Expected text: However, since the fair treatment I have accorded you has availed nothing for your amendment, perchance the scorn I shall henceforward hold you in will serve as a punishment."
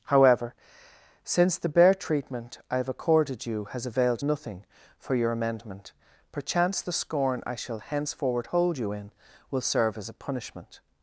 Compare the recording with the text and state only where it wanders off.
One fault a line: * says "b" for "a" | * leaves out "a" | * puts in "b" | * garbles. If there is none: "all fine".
* says "bare" for "fair"